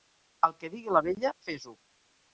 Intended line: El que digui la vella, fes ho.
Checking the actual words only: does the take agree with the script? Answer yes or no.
yes